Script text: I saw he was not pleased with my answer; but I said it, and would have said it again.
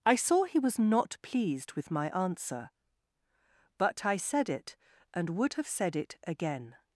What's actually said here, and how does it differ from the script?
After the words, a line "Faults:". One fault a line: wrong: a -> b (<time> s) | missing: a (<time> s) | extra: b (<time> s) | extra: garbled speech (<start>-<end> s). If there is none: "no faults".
I saw he was not pleased with my answer; but I said it, and would have said it again.
Faults:
no faults